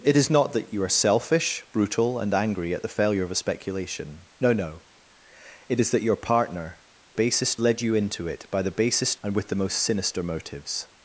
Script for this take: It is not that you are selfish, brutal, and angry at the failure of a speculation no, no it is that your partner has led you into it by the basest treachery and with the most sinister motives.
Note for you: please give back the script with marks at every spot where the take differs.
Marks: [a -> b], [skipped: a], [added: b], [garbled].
It is not that you are selfish, brutal, and angry at the failure of a speculation no, no it is that your partner [has -> basest] led you into it by the basest [skipped: treachery] and with the most sinister motives.